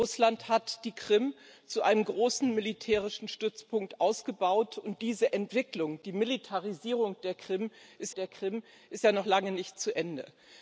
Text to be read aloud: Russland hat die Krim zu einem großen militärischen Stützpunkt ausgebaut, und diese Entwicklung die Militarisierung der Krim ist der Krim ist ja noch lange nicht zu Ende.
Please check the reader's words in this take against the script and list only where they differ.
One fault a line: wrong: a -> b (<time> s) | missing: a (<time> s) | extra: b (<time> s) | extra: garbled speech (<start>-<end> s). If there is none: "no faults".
no faults